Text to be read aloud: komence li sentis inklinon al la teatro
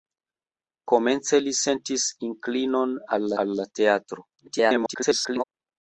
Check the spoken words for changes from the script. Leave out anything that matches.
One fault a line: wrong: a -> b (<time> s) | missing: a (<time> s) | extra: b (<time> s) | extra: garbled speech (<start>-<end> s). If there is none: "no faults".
extra: al (3.5 s)
extra: garbled speech (4.4-5.4 s)